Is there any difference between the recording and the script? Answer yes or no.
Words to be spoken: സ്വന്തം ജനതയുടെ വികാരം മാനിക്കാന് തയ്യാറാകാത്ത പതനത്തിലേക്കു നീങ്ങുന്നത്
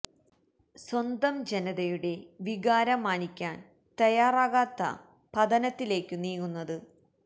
no